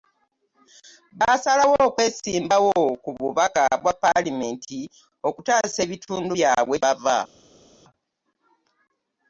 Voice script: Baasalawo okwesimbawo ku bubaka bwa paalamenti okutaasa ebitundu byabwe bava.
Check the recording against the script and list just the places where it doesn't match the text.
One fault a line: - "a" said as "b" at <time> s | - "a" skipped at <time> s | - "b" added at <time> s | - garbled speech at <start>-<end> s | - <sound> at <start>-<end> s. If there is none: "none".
none